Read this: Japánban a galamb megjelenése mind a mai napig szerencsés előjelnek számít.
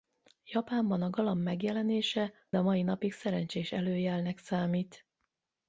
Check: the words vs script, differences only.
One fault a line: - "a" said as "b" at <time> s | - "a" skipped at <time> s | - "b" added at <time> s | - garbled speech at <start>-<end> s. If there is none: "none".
- "mind" skipped at 2.3 s